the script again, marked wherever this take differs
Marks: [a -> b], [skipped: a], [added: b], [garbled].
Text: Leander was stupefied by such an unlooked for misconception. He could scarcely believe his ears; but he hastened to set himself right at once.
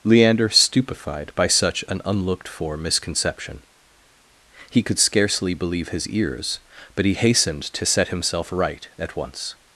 Leander [skipped: was] stupefied by such an unlooked for misconception. He could scarcely believe his ears; but he hastened to set himself right at once.